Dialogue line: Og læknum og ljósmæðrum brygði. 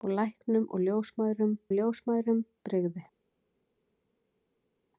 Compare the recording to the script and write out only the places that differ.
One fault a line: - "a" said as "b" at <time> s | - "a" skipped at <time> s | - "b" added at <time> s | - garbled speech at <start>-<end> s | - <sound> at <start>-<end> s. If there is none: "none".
- "ljósmæðrum" added at 1.7 s